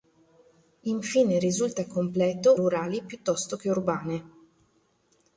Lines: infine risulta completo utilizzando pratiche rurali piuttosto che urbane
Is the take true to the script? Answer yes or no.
no